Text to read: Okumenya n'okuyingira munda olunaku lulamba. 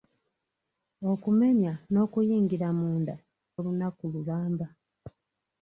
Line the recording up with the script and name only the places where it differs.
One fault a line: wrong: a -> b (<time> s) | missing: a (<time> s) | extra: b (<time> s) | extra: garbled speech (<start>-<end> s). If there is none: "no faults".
no faults